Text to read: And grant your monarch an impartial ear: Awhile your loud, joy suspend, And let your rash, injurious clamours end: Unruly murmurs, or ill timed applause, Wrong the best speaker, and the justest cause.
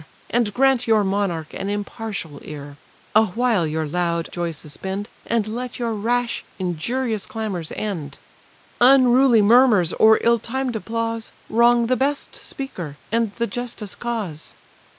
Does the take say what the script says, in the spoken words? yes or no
yes